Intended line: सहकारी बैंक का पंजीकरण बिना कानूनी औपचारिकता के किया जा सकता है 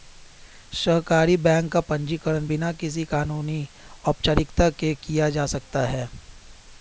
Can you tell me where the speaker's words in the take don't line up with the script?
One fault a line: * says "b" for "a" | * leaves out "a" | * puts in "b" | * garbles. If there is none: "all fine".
* puts in "किसी"